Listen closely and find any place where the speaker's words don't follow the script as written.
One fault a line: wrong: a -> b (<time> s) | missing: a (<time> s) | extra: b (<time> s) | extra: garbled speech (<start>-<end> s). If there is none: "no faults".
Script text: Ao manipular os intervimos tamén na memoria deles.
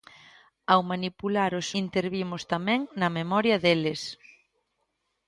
no faults